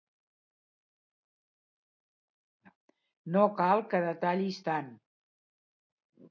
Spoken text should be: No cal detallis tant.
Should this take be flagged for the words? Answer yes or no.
yes